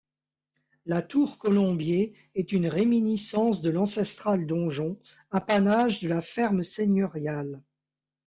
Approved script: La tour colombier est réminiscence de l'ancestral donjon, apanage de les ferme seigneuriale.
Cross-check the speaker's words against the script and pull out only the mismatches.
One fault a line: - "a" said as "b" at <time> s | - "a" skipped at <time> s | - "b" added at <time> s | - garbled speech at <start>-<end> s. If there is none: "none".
- "une" added at 2.5 s
- "les" said as "la" at 6.1 s